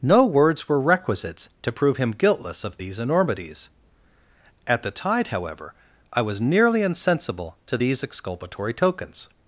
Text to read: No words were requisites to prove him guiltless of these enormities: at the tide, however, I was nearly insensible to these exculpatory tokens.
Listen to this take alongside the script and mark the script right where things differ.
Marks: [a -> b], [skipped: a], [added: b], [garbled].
No words were requisites to prove him guiltless of these enormities: at the tide, however, I was nearly insensible to these exculpatory tokens.